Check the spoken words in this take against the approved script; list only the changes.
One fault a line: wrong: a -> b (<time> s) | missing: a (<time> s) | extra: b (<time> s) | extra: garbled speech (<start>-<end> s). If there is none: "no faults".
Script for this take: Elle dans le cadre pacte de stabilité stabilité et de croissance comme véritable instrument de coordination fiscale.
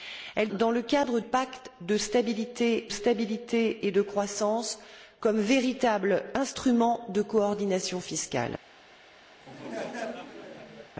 no faults